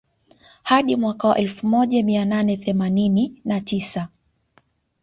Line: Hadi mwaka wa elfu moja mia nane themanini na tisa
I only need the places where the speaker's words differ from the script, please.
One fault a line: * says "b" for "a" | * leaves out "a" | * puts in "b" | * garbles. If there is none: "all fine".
all fine